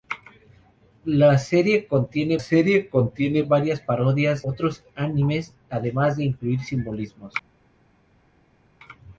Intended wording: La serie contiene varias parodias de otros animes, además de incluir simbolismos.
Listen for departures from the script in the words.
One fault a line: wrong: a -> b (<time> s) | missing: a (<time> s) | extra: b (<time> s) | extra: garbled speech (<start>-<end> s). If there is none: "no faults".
extra: serie contiene (2.4 s)
missing: de (4.5 s)